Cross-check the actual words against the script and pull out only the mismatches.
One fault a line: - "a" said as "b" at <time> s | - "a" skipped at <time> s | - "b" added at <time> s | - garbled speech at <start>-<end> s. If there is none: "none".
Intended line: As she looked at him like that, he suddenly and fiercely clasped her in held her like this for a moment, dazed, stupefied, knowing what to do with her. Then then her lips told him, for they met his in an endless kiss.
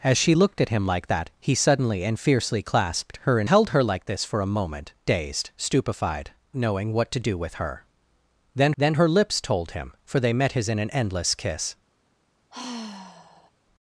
none